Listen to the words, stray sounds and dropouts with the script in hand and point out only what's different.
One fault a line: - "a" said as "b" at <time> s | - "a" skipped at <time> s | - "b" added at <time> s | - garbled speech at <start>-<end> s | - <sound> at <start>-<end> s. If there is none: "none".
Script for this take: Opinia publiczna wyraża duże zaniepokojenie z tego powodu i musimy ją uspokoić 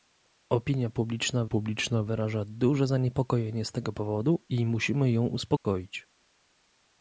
- "publiczna" added at 1.4 s
- dropout at 5.6-5.6 s